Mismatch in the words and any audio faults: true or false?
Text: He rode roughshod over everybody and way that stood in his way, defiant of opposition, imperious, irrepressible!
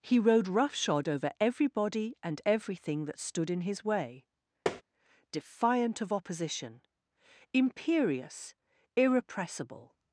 true